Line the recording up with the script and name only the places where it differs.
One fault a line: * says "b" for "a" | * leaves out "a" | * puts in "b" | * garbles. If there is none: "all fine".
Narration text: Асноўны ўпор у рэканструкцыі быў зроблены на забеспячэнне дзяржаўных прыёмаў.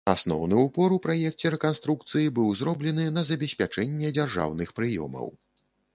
* puts in "праекце"